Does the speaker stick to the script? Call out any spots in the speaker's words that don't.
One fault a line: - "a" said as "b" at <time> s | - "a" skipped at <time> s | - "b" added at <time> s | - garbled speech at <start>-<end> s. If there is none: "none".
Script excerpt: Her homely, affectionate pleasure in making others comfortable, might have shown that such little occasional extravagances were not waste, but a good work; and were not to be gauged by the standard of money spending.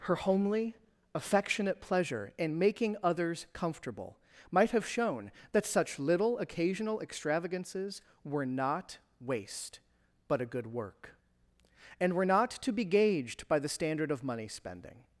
none